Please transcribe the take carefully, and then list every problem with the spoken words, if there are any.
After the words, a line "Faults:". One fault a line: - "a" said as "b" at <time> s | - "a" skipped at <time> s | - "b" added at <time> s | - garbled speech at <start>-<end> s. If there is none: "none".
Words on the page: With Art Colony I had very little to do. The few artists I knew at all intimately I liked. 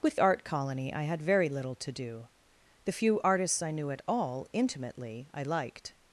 With Art Colony I had very little to do. The few artists I knew at all intimately I liked.
Faults:
none